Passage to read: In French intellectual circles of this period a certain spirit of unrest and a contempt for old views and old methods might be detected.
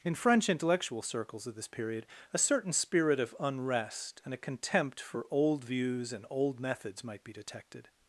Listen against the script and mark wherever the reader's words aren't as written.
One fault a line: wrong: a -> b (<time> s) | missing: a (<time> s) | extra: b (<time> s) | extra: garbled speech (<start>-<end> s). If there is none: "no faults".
no faults